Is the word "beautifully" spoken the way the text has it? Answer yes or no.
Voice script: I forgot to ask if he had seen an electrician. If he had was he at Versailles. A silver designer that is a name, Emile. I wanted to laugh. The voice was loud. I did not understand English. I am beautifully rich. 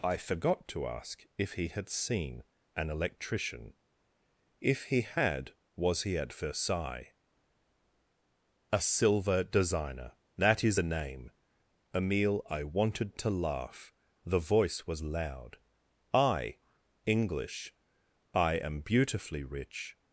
yes